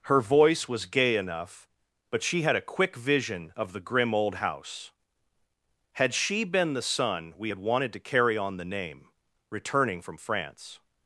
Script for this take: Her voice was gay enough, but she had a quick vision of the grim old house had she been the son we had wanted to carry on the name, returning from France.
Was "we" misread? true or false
false